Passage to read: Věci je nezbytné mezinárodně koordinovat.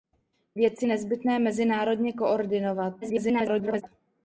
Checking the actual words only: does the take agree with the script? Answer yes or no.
no